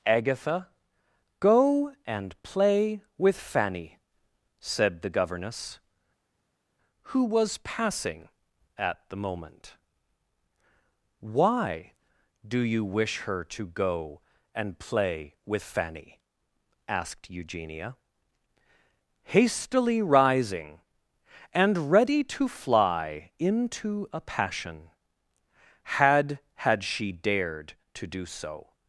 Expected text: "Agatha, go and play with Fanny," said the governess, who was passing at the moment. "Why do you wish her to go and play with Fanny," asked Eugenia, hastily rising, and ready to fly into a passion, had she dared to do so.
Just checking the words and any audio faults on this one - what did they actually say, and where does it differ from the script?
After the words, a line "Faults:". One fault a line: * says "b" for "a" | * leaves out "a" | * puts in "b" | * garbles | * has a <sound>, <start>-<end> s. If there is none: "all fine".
"Agatha, go and play with Fanny," said the governess, who was passing at the moment. "Why do you wish her to go and play with Fanny," asked Eugenia, hastily rising, and ready to fly into a passion, had had she dared to do so.
Faults:
* puts in "had"